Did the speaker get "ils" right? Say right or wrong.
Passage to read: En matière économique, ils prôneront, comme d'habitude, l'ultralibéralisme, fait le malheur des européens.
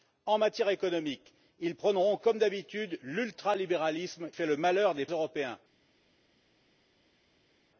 right